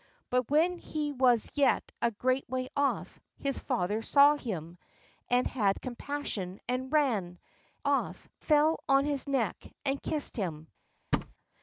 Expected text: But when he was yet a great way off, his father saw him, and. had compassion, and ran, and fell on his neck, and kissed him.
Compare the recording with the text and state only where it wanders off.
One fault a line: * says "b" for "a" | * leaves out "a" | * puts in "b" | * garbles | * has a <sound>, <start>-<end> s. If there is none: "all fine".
* says "off" for "and"
* has a thud, 11.1-11.3 s